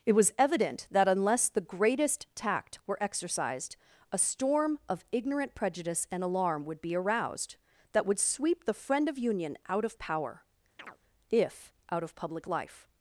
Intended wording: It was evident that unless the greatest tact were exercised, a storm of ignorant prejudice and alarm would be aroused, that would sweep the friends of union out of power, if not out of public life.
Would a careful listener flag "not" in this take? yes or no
yes